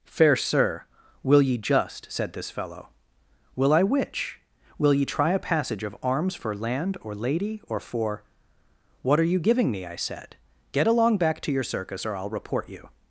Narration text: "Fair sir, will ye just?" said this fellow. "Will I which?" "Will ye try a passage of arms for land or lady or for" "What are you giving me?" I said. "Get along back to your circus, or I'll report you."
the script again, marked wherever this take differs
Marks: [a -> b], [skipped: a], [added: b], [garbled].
"Fair sir, will ye just?" said this fellow. "Will I which?" "Will ye try a passage of arms for land or lady or for" "What are you giving me?" I said. "Get along back to your circus, or I'll report you."